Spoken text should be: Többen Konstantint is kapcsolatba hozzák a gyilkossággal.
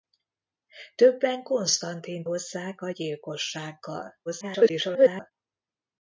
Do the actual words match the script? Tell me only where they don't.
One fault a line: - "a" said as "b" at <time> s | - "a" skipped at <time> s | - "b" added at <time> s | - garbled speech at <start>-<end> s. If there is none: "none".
- "is kapcsolatba" skipped at 2.3 s
- garbled speech at 4.3-5.3 s